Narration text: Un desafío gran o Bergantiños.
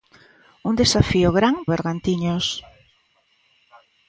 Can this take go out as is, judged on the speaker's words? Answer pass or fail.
pass